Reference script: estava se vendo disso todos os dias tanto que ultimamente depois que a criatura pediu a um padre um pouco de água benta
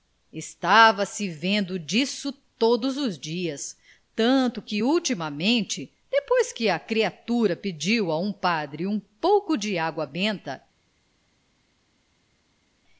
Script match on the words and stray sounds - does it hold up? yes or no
yes